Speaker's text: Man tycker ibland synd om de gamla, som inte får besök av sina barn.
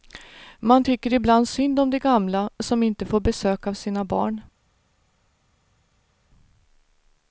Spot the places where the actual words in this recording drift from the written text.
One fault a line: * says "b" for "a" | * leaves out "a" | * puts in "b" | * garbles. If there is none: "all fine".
all fine